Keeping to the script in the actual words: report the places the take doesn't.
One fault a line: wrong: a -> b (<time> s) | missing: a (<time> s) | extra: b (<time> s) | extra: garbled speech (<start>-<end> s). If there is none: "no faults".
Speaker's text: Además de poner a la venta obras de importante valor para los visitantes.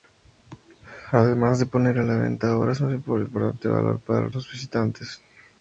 no faults